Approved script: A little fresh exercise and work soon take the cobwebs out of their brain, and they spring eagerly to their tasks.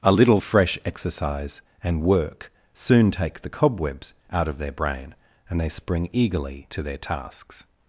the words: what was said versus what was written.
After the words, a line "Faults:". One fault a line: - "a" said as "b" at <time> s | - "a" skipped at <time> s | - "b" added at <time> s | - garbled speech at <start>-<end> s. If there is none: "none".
A little fresh exercise and work soon take the cobwebs out of their brain, and they spring eagerly to their tasks.
Faults:
none